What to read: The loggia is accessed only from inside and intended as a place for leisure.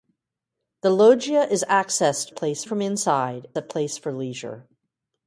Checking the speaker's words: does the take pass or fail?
fail